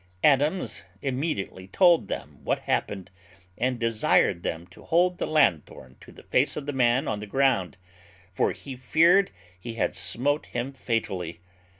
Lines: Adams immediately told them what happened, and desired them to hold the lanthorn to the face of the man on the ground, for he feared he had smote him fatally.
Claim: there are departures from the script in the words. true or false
false